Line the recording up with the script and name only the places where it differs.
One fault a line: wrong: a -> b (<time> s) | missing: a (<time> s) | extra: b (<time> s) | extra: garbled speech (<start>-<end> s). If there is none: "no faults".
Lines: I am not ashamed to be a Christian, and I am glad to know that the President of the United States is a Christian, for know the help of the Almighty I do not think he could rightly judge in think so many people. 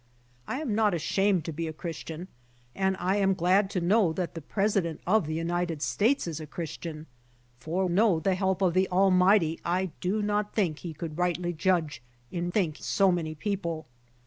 no faults